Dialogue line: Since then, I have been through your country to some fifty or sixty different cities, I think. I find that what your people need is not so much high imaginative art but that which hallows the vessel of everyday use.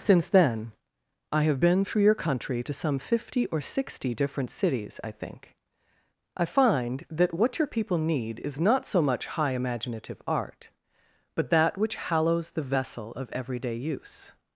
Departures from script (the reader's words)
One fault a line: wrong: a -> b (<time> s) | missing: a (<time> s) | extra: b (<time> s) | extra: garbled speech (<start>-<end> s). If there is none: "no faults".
no faults